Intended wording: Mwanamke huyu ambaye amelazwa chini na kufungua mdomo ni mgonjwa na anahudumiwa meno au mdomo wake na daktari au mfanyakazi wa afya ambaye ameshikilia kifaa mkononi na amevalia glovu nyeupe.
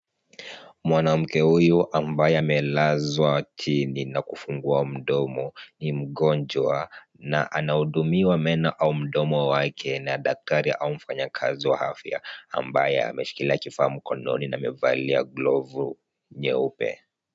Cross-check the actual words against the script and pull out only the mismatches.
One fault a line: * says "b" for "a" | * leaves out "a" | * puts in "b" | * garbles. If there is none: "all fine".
all fine